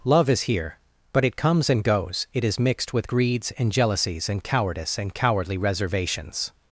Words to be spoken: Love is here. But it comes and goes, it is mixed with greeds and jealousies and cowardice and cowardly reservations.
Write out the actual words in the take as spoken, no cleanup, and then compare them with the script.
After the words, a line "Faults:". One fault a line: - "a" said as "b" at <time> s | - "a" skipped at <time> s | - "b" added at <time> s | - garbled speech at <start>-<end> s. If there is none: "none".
Love is here. But it comes and goes, it is mixed with greeds and jealousies and cowardice and cowardly reservations.
Faults:
none